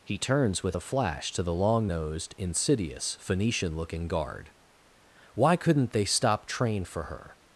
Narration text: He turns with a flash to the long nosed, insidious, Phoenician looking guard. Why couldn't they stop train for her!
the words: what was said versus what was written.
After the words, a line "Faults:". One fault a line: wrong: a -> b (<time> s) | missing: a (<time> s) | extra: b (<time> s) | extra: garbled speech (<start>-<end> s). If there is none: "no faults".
He turns with a flash to the long nosed, insidious, Phoenician looking guard. Why couldn't they stop train for her!
Faults:
no faults